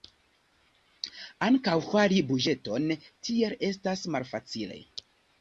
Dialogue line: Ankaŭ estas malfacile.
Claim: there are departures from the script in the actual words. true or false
true